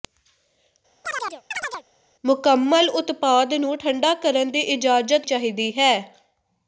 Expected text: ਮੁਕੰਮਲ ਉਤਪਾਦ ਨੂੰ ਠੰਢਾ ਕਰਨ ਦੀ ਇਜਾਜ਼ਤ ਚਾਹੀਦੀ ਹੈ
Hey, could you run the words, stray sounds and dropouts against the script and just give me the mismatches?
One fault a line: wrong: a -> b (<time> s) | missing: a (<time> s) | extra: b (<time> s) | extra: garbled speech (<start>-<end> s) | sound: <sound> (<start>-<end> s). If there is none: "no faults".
sound: chirp (1.0-1.9 s)